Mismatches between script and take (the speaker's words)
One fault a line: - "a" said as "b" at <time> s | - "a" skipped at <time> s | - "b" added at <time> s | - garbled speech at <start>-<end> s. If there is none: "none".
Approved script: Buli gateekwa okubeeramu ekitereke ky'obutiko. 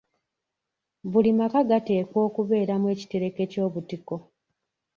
- "maka" added at 1.4 s